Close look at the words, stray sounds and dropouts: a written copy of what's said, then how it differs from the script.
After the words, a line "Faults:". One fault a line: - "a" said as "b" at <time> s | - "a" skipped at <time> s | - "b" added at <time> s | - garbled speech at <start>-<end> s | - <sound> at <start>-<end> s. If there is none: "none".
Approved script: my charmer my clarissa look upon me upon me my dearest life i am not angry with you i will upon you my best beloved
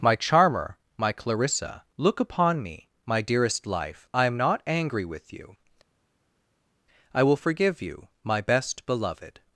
my charmer my clarissa look upon me my dearest life i am not angry with you i will forgive you my best beloved
Faults:
- "upon me" skipped at 2.9 s
- "upon" said as "forgive" at 7.4 s